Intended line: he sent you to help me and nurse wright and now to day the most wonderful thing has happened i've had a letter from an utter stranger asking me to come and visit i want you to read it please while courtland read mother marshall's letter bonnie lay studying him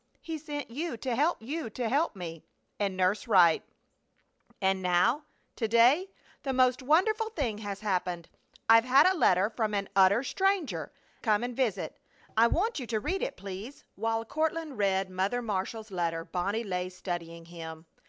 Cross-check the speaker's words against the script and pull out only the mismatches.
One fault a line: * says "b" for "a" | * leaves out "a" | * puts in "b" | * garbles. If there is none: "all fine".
* puts in "you to help"
* leaves out "asking me to"